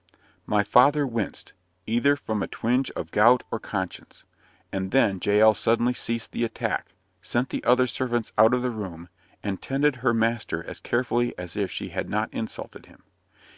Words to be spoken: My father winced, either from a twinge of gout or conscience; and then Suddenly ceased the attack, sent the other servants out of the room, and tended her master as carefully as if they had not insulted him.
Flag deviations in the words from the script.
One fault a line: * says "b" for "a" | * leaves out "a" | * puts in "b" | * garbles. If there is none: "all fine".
* puts in "Jael"
* says "she" for "they"